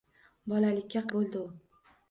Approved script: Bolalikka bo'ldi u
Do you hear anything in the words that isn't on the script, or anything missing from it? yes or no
no